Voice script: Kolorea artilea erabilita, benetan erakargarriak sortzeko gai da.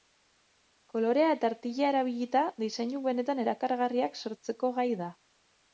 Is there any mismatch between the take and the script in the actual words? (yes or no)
yes